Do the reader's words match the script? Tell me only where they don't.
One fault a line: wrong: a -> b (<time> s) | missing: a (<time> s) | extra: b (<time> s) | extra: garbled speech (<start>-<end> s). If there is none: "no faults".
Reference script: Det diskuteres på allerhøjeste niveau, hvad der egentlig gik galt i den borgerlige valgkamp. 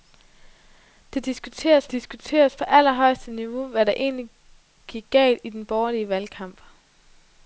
extra: diskuteres (1.9 s)